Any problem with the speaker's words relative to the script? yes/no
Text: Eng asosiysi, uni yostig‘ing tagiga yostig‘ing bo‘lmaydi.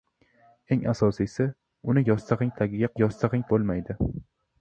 no